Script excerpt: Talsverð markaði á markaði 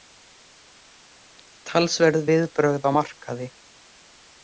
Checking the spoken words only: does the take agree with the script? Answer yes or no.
no